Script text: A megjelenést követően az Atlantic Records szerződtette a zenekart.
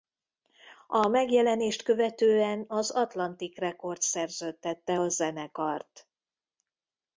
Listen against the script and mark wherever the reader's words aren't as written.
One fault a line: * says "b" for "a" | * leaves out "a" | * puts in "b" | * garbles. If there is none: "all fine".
all fine